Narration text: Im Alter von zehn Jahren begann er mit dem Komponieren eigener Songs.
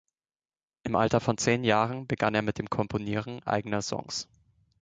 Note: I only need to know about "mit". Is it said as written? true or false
true